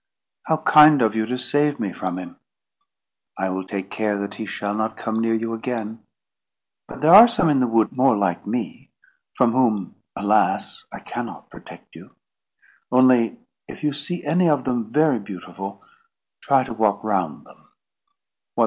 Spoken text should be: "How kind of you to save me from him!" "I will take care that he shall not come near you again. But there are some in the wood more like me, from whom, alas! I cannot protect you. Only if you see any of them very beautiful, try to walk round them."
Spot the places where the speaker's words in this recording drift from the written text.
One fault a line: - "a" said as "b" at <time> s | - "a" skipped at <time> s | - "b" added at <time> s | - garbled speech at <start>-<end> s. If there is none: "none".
none